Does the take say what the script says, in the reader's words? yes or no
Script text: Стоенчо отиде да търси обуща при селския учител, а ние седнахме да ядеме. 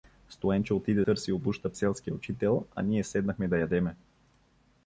no